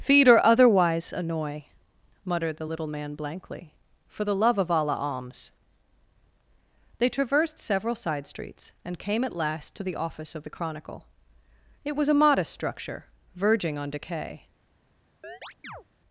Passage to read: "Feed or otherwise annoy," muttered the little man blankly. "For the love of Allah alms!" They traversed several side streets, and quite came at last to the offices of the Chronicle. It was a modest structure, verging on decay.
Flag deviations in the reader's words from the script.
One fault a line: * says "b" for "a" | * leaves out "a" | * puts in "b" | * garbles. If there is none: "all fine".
* leaves out "quite"
* says "office" for "offices"